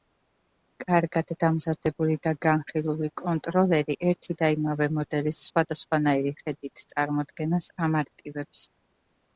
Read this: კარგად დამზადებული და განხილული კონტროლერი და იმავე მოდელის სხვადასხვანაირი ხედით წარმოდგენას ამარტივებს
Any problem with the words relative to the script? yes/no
yes